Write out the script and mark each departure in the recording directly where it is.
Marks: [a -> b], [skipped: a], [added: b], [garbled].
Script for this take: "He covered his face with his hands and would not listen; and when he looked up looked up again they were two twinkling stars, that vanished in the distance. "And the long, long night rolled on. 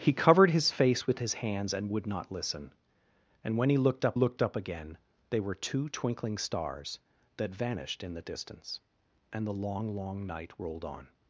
"He covered his face with his hands and would not listen; and when he looked up looked up again they were two twinkling stars, that vanished in the distance. "And the long, long night rolled on.